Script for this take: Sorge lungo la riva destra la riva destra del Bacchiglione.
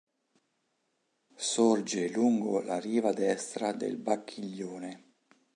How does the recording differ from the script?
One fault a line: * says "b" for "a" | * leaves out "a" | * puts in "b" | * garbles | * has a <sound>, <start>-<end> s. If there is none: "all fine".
* leaves out "la riva destra"